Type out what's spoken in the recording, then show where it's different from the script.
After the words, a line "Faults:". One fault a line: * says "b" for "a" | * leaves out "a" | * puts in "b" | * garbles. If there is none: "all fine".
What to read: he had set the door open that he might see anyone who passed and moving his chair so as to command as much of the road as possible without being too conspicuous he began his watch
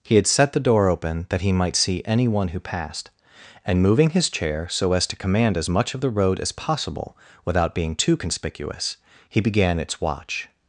he had set the door open that he might see anyone who passed and moving his chair so as to command as much of the road as possible without being too conspicuous he began its watch
Faults:
* says "its" for "his"